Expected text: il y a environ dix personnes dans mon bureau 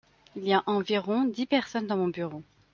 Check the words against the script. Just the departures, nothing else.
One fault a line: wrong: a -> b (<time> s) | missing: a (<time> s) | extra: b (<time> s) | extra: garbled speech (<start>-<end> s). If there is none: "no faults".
no faults